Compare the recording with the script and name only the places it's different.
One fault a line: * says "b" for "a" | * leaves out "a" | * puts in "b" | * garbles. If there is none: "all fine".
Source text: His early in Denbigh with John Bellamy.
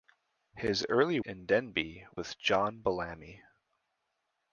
all fine